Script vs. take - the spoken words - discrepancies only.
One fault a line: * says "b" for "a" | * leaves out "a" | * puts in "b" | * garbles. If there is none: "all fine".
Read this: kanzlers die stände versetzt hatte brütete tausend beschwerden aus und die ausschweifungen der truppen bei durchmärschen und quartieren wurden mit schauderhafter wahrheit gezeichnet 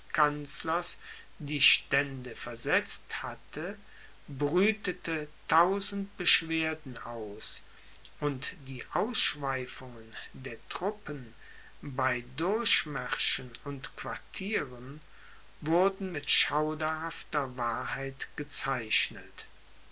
all fine